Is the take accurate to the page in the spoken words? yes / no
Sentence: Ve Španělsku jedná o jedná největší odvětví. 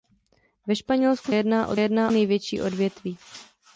yes